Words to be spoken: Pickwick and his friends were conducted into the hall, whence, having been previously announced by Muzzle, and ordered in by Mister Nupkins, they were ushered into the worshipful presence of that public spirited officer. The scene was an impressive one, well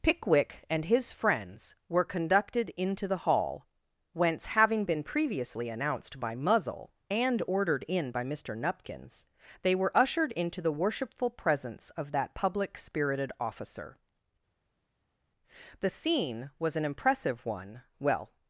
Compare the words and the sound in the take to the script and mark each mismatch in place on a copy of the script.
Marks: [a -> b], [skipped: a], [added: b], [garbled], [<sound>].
Pickwick and his friends were conducted into the hall, whence, having been previously announced by Muzzle, and ordered in by Mister Nupkins, they were ushered into the worshipful presence of that public spirited officer. The scene was an impressive one, well